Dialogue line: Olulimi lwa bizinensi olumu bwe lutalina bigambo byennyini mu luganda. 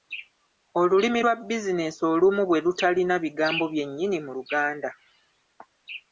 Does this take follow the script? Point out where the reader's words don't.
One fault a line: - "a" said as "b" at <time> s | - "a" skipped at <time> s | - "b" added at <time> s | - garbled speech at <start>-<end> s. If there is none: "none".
none